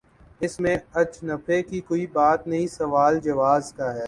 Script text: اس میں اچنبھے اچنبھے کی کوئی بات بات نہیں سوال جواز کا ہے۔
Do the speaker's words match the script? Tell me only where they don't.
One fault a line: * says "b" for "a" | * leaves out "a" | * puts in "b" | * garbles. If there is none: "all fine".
* leaves out "اچنبھے"
* leaves out "بات"